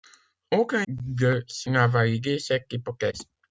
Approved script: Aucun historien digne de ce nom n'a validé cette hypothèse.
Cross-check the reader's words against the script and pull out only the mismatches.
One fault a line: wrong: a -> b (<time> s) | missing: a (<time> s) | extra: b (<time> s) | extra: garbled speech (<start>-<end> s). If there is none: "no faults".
missing: historien digne (0.8 s)
missing: nom (1.7 s)